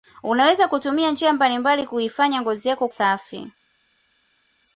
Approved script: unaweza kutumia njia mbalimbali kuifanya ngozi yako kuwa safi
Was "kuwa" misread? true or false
true